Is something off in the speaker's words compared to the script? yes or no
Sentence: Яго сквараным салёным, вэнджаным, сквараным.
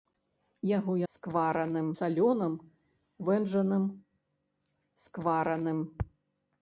no